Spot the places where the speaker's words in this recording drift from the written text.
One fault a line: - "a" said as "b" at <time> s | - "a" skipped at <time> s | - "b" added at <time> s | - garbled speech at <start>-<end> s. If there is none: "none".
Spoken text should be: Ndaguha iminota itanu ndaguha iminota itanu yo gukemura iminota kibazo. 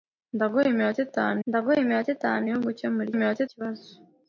none